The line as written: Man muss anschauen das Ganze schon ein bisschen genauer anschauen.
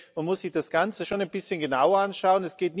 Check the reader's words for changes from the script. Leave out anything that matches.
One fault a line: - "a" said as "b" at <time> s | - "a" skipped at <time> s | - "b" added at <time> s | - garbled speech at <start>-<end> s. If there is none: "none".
- "anschauen" said as "sich" at 0.4 s